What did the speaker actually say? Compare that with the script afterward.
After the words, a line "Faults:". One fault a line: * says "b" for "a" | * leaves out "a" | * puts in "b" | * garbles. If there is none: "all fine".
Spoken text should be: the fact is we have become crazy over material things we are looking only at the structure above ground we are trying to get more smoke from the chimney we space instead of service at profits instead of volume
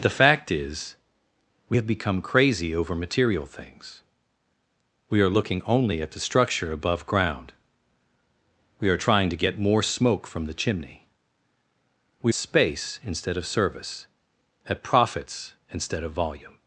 the fact is we have become crazy over material things we are looking only at the structure above ground we are trying to get more smoke from the chimney we space instead of service at profits instead of volume
Faults:
all fine